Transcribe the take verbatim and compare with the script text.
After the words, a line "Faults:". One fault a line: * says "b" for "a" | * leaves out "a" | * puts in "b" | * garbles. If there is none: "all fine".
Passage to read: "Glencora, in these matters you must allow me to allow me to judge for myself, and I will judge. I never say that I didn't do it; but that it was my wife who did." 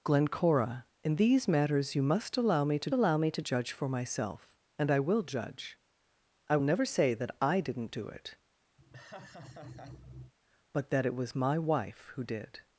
"Glencora, in these matters you must allow me to allow me to judge for myself, and I will judge. I never say that I didn't do it; but that it was my wife who did."
Faults:
all fine